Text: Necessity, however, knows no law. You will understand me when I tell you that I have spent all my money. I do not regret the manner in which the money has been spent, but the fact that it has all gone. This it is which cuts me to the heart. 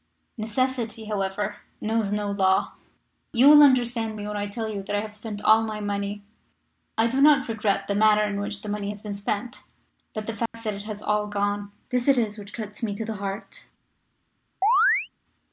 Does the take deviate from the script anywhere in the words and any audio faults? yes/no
yes